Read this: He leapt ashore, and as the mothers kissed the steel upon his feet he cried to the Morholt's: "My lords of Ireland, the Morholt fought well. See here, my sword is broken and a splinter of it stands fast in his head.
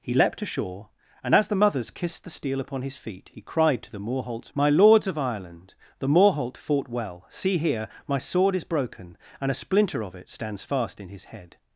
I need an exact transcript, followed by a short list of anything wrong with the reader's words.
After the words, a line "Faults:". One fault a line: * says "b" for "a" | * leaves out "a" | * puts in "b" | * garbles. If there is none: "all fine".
He leapt ashore, and as the mothers kissed the steel upon his feet he cried to the Morholt's: "My lords of Ireland, the Morholt fought well. See here, my sword is broken and a splinter of it stands fast in his head.
Faults:
all fine